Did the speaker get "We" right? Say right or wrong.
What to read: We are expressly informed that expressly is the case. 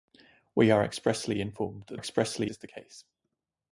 right